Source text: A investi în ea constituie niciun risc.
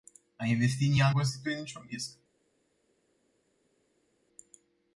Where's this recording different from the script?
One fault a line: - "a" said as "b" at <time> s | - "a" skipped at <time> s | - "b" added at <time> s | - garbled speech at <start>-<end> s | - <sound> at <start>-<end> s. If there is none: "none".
none